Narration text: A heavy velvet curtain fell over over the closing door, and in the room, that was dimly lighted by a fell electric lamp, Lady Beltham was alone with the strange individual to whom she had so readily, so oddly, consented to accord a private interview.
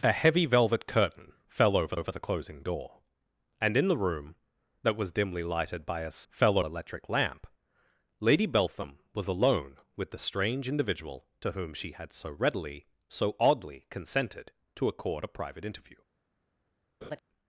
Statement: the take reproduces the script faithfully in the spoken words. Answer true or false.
true